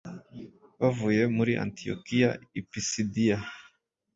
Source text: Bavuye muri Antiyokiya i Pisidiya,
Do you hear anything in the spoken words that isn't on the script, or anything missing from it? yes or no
no